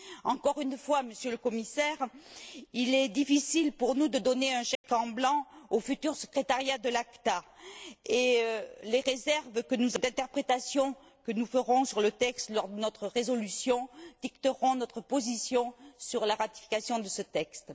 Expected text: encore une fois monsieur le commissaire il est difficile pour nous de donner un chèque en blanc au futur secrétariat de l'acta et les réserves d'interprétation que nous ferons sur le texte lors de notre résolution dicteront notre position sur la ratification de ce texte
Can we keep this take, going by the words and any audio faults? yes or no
no